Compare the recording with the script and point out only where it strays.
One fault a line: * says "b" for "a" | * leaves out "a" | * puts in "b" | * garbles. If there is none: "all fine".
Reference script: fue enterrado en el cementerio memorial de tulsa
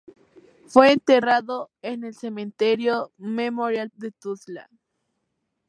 all fine